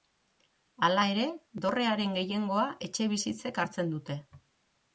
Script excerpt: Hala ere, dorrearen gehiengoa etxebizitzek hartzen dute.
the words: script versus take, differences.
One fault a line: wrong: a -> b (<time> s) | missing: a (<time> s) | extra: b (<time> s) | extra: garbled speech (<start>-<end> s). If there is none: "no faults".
no faults